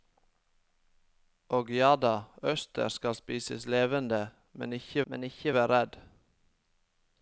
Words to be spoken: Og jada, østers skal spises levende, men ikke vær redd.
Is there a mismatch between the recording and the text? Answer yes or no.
yes